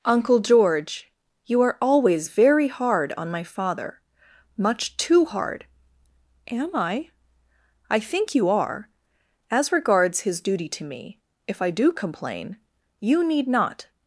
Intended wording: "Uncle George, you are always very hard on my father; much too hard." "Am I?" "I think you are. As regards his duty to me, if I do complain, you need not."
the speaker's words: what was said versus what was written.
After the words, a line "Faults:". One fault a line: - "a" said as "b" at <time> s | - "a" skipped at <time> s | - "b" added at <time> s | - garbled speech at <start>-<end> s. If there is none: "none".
"Uncle George, you are always very hard on my father; much too hard." "Am I?" "I think you are. As regards his duty to me, if I do complain, you need not."
Faults:
none